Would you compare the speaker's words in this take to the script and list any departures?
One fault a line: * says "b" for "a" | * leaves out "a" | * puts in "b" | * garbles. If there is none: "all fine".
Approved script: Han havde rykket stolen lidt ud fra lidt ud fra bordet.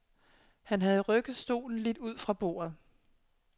* leaves out "lidt ud fra"